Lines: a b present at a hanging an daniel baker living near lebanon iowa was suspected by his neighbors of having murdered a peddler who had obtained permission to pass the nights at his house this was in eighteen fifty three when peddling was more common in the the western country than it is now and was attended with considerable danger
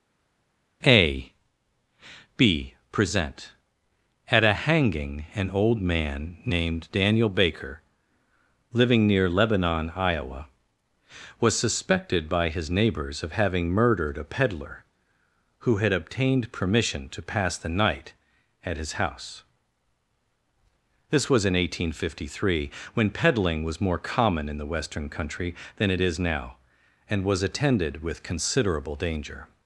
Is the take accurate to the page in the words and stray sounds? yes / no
no